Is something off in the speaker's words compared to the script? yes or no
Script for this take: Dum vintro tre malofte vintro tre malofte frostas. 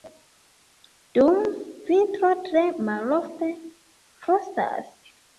yes